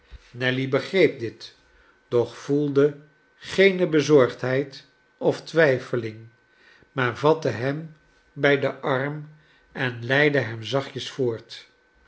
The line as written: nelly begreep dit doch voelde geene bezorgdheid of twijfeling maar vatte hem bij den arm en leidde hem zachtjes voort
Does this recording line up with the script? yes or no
yes